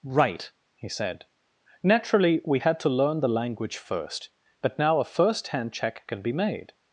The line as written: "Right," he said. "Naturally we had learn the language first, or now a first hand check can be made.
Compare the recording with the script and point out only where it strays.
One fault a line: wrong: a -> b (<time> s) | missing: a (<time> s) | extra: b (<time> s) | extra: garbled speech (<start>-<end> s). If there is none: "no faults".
extra: to (2.8 s)
wrong: or -> but (4.6 s)